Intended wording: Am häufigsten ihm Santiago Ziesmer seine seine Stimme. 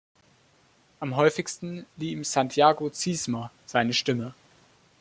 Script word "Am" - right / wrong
right